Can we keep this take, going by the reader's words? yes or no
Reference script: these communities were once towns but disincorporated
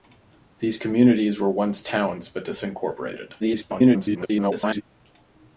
no